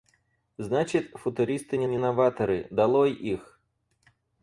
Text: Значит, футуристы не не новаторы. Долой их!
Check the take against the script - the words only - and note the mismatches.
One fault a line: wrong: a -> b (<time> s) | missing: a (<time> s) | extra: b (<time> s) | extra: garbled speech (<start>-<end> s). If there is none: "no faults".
no faults